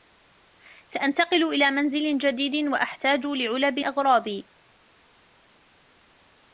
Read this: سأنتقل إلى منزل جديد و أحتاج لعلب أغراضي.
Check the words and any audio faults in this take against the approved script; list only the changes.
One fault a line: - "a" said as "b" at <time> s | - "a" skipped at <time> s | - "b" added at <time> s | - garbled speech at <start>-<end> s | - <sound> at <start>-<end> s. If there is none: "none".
none